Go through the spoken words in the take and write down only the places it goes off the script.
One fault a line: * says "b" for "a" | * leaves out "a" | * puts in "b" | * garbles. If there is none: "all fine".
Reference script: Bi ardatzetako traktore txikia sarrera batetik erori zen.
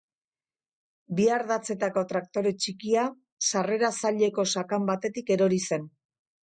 * puts in "zaileko sakan"